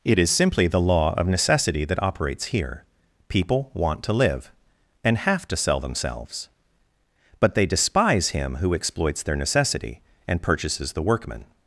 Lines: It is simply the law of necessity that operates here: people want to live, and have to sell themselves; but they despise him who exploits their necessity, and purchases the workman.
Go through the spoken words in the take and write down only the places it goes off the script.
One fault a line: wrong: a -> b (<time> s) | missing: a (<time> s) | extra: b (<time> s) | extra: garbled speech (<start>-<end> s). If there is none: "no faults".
no faults